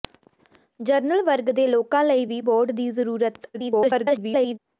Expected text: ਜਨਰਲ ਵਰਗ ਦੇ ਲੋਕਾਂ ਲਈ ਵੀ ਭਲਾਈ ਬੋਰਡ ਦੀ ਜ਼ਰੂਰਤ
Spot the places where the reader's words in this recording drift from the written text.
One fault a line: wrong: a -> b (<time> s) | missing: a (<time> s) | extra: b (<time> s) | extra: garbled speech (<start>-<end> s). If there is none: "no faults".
missing: ਭਲਾਈ (2.4 s)
extra: garbled speech (3.5-4.6 s)